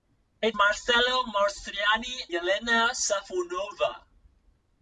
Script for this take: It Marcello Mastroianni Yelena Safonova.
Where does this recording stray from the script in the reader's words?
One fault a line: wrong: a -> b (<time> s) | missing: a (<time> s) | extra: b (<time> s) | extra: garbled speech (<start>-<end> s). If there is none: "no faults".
no faults